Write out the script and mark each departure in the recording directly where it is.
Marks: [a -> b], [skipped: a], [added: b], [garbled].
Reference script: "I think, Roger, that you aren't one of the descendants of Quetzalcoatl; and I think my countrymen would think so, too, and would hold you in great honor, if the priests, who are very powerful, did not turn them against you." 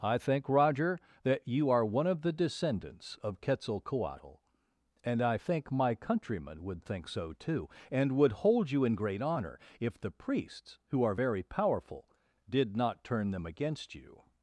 "I think, Roger, that you [aren't -> are] one of the descendants of Quetzalcoatl; and I think my countrymen would think so, too, and would hold you in great honor, if the priests, who are very powerful, did not turn them against you."